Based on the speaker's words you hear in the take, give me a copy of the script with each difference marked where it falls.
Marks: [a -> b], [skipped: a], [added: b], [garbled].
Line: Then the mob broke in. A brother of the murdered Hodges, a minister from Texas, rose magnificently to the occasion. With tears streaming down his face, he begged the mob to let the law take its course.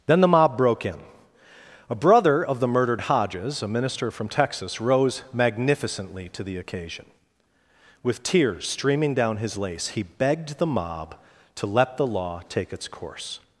Then the mob broke in. A brother of the murdered Hodges, a minister from Texas, rose magnificently to the occasion. With tears streaming down his [face, -> lace] he begged the mob to let the law take its course.